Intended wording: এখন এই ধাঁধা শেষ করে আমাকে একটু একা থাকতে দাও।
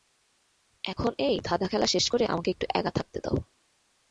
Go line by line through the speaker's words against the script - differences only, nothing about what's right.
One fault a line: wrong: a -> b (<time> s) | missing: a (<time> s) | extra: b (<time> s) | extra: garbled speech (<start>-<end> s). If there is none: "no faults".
extra: খেলা (1.6 s)